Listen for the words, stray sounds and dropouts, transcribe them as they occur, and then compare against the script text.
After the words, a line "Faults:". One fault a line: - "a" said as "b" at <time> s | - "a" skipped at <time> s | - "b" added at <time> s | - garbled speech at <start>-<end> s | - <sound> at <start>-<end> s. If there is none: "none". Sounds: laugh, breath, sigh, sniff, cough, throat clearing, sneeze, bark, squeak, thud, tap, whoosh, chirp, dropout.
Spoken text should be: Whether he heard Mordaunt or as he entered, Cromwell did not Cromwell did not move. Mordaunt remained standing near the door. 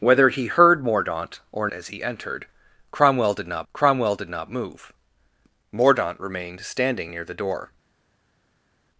Whether he heard Mordaunt or as he entered, Cromwell did not Cromwell did not move. Mordaunt remained standing near the door.
Faults:
none